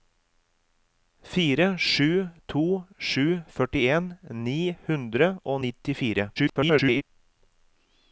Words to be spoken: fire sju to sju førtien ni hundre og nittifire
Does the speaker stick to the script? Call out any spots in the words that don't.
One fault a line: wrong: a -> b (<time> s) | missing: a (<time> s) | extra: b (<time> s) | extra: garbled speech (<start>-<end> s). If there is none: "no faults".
extra: garbled speech (6.4-7.0 s)